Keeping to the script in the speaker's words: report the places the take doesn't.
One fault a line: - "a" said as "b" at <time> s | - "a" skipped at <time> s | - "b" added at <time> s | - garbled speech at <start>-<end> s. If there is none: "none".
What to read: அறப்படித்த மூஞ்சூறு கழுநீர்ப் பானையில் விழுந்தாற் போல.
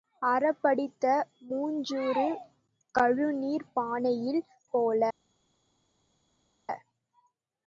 - "விழுந்தாற்" skipped at 4.4 s